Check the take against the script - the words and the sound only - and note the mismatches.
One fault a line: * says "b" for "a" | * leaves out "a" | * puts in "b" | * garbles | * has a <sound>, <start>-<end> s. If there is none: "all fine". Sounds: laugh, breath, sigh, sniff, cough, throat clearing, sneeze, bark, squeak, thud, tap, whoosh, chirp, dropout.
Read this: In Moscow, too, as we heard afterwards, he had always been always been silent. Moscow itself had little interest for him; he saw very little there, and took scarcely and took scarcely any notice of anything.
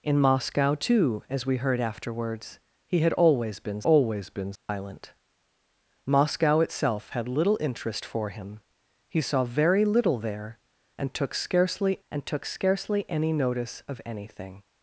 * has a dropout, 4.6-4.7 s